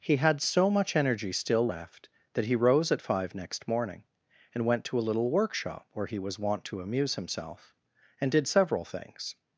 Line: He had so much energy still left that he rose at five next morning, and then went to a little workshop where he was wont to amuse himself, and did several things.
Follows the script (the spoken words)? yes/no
no